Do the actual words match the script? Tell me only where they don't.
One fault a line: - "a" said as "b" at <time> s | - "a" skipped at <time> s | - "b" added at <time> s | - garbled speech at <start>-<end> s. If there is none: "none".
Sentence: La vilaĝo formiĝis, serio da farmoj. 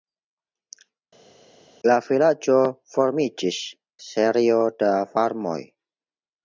none